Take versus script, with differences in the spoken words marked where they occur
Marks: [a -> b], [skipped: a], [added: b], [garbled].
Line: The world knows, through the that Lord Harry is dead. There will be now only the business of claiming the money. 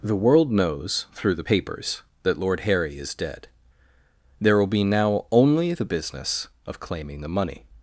The world knows, through the [added: papers] that Lord Harry is dead. There will be now only the business of claiming the money.